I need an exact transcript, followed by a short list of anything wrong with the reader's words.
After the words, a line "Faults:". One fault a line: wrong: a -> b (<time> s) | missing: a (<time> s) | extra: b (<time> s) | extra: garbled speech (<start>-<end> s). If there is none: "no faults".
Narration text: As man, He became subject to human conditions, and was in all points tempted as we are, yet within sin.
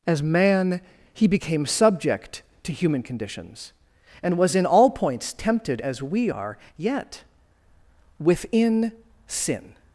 As man, He became subject to human conditions, and was in all points tempted as we are, yet within sin.
Faults:
no faults